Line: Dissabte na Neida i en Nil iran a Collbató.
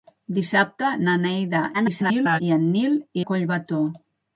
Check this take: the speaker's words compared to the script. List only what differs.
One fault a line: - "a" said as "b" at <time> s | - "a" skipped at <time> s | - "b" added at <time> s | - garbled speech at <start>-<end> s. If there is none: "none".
- garbled speech at 1.7-2.4 s
- "iran" skipped at 3.0 s